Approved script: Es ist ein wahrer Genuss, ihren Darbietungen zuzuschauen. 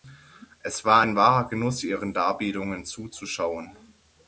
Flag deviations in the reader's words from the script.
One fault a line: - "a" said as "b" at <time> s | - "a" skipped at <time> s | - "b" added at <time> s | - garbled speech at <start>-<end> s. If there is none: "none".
- "ist" said as "war" at 0.8 s